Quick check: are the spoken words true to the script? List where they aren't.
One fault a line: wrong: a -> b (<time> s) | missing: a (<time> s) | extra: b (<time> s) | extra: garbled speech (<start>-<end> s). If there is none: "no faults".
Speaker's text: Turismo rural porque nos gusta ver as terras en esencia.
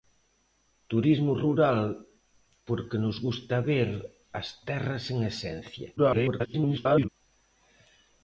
extra: garbled speech (6.0-7.1 s)